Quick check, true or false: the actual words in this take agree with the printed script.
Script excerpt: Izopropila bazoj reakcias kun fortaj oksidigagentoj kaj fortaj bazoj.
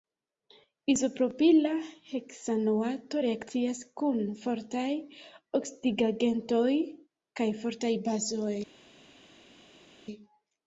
false